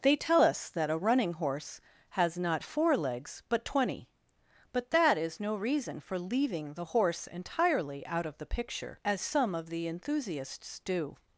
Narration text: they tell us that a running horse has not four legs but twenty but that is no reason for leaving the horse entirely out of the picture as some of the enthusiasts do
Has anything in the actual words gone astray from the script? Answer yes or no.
no